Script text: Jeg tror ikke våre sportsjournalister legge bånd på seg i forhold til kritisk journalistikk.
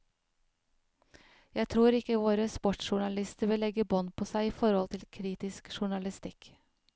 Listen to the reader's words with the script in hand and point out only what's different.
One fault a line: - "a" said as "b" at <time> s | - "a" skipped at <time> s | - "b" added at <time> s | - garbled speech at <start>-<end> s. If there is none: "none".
- "vil" added at 3.5 s